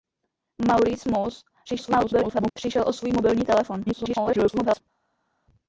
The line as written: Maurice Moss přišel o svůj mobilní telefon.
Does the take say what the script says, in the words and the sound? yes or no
no